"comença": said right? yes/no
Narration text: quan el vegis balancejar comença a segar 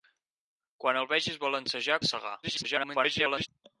no